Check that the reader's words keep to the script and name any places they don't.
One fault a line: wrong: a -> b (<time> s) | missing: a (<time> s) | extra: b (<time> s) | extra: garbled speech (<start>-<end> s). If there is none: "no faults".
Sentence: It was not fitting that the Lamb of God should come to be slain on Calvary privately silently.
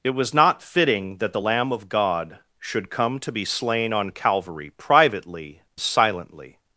no faults